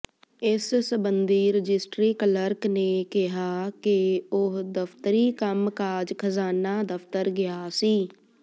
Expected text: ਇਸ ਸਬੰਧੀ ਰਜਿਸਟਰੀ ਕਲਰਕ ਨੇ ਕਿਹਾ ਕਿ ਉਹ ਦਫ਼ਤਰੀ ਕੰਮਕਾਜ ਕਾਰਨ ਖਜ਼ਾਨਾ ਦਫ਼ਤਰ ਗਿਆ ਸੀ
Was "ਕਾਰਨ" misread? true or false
true